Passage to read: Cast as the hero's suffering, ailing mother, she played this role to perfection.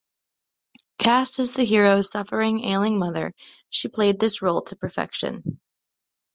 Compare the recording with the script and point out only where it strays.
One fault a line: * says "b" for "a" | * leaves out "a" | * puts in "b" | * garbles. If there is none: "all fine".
all fine